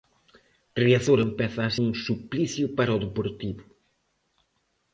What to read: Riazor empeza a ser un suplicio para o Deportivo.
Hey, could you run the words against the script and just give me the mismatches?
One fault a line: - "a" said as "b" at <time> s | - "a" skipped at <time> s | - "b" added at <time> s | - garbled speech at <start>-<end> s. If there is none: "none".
- "ser" skipped at 1.7 s